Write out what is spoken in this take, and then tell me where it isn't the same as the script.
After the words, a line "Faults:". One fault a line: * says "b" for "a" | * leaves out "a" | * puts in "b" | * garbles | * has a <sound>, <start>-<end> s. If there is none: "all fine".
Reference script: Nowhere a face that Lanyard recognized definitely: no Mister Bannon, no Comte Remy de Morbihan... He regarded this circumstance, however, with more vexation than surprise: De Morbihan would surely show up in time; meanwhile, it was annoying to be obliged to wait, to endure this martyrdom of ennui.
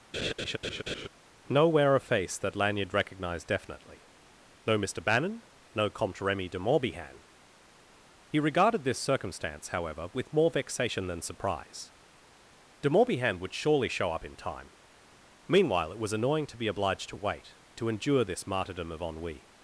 Nowhere a face that Lanyard recognized definitely: no Mister Bannon, no Comte Remy de Morbihan... He regarded this circumstance, however, with more vexation than surprise: De Morbihan would surely show up in time; meanwhile, it was annoying to be obliged to wait, to endure this martyrdom of ennui.
Faults:
* has a laugh, 0.1-1.1 s